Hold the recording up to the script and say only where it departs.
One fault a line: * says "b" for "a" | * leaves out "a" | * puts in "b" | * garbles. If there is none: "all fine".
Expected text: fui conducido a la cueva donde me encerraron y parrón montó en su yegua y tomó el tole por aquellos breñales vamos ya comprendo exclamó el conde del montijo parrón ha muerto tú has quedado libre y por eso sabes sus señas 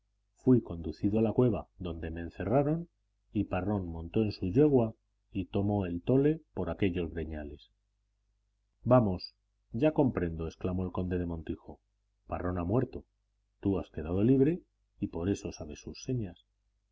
all fine